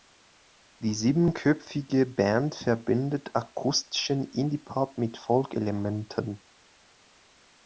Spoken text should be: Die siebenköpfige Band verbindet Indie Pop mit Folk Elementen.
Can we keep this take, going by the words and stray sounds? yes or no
no